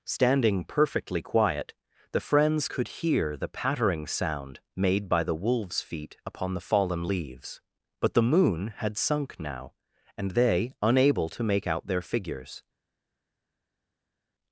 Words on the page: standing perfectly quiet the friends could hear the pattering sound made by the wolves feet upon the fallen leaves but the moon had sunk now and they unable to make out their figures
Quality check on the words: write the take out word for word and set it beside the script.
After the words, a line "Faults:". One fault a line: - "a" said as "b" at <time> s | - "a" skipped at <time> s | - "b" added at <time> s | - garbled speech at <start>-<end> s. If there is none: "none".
standing perfectly quiet the friends could hear the pattering sound made by the wolves feet upon the fallen leaves but the moon had sunk now and they unable to make out their figures
Faults:
none